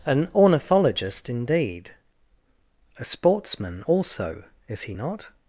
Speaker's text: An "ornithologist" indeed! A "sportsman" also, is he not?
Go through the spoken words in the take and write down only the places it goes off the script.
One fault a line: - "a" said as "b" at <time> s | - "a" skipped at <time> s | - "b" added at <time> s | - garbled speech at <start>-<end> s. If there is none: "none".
none